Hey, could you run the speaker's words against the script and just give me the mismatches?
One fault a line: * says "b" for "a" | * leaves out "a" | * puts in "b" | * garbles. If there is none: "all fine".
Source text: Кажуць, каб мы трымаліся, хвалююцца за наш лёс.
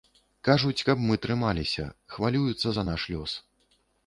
all fine